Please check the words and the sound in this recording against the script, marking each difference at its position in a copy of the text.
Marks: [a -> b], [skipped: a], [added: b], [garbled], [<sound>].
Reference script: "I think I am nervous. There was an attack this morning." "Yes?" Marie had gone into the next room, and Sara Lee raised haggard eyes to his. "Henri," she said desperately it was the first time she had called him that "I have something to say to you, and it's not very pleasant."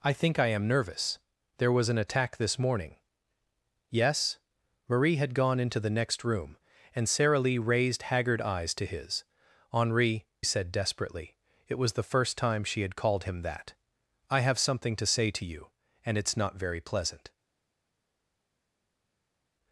"I think I am nervous. There was an attack this morning." "Yes?" Marie had gone into the next room, and Sara Lee raised haggard eyes to his. "Henri," [skipped: she] said desperately it was the first time she had called him that "I have something to say to you, and it's not very pleasant."